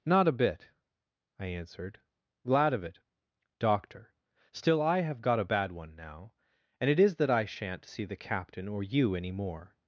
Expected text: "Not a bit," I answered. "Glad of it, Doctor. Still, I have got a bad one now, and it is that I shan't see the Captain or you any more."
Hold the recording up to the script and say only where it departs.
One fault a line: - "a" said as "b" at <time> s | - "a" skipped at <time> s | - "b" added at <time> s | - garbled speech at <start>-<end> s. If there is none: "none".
none